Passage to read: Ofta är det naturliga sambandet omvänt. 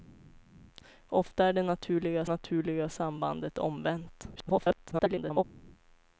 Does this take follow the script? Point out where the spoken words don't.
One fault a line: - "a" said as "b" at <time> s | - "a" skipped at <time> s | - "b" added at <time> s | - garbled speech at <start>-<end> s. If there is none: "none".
- "naturliga" added at 2.2 s
- garbled speech at 4.4-5.4 s